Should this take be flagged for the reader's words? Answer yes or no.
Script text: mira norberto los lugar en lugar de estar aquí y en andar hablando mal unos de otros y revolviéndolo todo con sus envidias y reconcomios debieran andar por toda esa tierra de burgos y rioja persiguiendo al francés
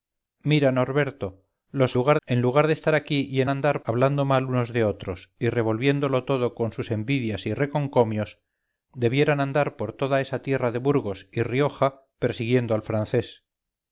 no